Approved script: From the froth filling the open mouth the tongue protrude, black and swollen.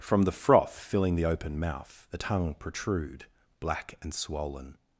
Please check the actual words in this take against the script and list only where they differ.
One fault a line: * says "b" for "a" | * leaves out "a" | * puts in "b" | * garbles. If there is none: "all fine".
all fine